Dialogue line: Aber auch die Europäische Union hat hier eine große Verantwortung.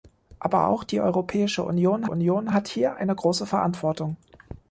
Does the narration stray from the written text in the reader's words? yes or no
yes